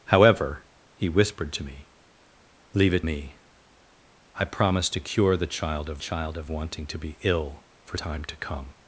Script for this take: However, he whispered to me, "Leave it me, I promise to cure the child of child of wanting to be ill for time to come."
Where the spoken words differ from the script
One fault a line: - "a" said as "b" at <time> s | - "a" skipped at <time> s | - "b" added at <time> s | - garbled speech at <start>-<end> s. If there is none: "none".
none